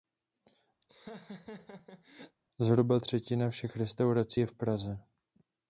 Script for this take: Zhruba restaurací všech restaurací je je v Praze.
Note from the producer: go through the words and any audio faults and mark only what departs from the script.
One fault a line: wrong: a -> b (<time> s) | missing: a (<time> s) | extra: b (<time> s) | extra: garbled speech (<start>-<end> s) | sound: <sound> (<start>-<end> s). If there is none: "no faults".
sound: laugh (0.8-2.4 s)
wrong: restaurací -> třetina (3.0 s)
missing: je (4.5 s)